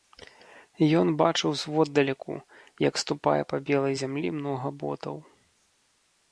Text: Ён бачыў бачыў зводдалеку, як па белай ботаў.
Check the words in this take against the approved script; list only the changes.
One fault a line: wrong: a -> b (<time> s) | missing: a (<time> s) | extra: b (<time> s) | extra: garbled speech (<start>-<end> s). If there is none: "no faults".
missing: бачыў (1.5 s)
extra: ступае (3.0 s)
extra: зямлі многа (4.0 s)